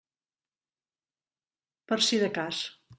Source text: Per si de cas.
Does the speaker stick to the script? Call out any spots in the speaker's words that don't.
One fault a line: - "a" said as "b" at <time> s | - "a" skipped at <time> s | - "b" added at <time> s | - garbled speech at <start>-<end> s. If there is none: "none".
none